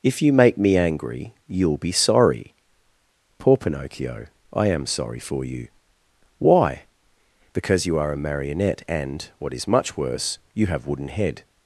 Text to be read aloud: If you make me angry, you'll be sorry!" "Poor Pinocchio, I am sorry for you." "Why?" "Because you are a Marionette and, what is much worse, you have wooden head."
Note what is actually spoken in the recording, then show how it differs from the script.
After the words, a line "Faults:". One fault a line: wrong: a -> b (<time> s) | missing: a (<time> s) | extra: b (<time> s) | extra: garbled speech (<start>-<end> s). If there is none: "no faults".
If you make me angry, you'll be sorry!" "Poor Pinocchio, I am sorry for you." "Why?" "Because you are a Marionette and, what is much worse, you have wooden head."
Faults:
no faults